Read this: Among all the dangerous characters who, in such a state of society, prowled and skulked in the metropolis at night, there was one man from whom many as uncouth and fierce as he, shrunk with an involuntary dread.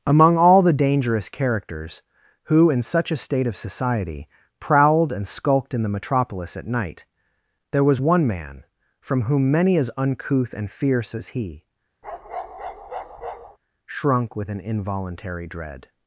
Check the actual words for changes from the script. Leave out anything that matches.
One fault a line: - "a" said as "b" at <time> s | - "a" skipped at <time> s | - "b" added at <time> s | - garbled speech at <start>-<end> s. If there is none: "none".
none